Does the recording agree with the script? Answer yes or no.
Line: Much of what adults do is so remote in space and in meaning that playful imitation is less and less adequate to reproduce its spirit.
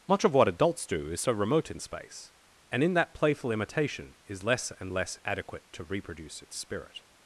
no